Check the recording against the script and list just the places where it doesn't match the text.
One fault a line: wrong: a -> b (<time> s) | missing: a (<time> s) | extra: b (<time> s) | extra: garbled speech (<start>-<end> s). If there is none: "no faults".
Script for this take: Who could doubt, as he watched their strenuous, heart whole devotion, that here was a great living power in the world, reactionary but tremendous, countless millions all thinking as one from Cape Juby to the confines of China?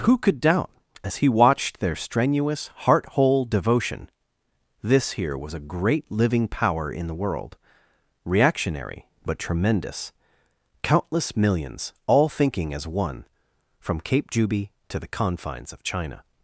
wrong: that -> this (4.8 s)